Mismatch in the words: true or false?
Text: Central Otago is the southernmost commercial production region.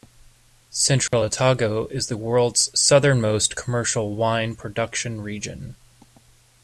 true